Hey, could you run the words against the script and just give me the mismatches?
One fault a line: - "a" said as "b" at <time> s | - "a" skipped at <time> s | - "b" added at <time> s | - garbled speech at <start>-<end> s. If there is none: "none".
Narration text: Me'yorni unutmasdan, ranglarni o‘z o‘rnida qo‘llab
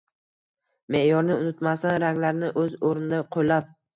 none